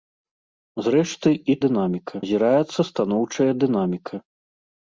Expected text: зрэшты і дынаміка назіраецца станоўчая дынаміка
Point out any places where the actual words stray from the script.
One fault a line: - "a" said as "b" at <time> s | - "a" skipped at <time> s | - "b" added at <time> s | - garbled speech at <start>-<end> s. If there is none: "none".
none